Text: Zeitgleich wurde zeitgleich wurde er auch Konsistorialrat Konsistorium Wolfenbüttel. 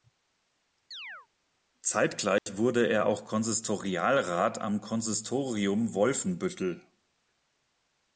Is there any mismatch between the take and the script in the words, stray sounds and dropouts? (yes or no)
yes